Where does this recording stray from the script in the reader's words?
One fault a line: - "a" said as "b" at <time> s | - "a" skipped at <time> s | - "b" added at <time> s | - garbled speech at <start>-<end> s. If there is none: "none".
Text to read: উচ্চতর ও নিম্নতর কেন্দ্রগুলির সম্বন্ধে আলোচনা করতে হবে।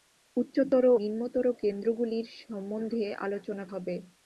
- "ও" skipped at 0.8 s
- "করতে" skipped at 3.6 s